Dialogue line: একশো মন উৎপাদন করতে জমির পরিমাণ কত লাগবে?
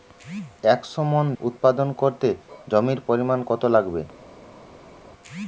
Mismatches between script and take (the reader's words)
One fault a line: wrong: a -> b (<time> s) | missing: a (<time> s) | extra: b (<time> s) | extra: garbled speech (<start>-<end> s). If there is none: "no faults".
no faults